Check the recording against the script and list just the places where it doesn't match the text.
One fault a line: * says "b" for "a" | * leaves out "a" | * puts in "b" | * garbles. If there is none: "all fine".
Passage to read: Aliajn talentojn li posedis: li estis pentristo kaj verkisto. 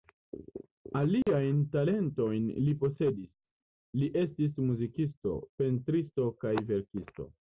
* puts in "muzikisto"